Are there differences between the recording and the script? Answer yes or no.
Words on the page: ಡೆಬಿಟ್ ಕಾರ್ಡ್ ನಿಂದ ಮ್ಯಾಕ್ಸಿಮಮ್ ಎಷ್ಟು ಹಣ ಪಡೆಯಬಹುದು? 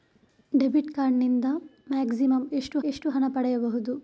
yes